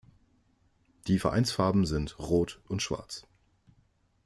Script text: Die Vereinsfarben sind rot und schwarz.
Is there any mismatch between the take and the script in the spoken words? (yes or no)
no